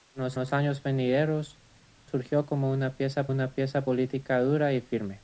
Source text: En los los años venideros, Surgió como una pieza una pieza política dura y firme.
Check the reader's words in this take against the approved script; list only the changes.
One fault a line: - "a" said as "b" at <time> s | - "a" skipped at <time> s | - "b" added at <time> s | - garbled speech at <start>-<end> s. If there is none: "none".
none